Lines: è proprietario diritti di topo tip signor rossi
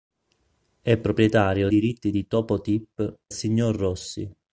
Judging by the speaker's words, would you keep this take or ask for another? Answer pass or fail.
pass